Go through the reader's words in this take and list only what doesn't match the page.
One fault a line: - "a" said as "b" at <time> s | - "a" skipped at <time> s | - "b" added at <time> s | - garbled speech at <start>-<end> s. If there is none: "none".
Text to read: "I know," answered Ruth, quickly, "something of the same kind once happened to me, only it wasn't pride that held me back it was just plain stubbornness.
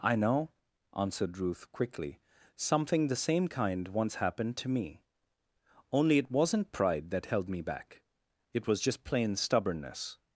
- "of" skipped at 3.1 s